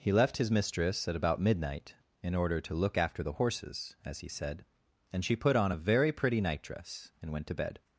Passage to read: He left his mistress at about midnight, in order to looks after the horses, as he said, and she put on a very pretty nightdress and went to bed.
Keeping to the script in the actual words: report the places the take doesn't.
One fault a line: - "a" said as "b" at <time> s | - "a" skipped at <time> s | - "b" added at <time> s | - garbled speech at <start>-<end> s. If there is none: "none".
- "looks" said as "look" at 2.7 s